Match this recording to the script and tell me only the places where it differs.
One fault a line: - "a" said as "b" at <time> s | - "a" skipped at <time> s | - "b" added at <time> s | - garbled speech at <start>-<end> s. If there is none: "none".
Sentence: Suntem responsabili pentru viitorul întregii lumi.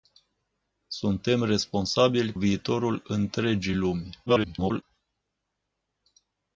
- "pentru" skipped at 2.3 s
- garbled speech at 4.3-4.8 s